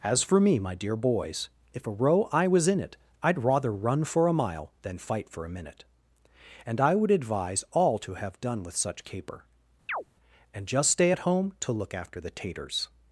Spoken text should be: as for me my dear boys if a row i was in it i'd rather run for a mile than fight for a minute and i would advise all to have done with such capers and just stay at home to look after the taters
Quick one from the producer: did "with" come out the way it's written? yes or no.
yes